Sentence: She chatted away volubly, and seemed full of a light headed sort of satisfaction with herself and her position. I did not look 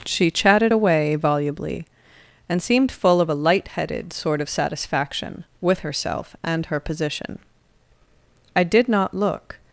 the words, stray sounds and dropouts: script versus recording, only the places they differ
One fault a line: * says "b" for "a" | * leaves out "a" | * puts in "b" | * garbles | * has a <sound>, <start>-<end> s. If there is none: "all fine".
all fine